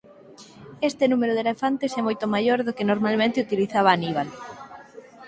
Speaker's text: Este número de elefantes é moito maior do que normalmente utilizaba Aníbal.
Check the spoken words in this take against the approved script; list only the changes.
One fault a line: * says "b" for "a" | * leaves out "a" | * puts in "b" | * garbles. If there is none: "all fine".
all fine